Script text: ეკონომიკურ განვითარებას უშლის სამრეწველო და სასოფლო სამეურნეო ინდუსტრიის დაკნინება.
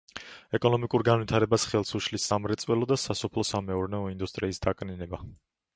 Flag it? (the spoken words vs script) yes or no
yes